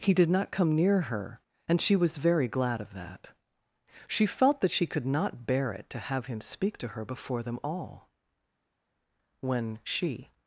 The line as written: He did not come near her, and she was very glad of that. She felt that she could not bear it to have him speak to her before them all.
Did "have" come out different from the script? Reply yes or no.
no